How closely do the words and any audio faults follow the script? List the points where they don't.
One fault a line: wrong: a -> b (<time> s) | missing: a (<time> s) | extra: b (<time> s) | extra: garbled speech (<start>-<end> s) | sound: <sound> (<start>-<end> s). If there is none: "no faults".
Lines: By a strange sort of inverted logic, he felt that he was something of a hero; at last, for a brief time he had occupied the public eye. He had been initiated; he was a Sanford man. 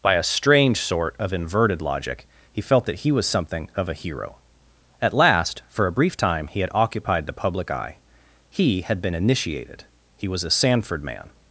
no faults